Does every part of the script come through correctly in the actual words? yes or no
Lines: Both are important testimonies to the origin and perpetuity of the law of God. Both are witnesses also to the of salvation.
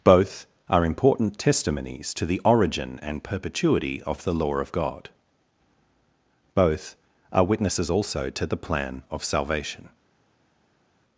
no